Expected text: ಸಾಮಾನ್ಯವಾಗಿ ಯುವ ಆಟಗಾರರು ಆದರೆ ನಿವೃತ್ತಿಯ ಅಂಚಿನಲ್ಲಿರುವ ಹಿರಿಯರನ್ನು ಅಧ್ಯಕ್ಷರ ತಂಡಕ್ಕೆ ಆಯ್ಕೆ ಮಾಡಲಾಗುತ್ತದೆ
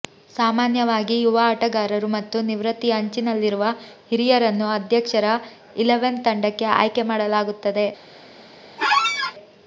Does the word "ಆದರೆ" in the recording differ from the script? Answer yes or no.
yes